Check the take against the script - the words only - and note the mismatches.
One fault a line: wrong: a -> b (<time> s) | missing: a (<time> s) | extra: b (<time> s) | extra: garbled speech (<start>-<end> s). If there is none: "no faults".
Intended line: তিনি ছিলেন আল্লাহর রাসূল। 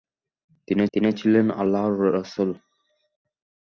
extra: তিনি (0.9 s)